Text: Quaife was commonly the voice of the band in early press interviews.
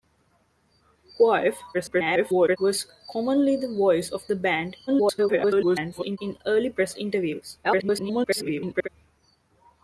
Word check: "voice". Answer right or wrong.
right